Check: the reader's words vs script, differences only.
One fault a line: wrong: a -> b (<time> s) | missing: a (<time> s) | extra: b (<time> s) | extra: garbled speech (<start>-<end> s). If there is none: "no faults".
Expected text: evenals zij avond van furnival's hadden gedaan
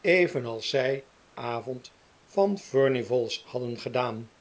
no faults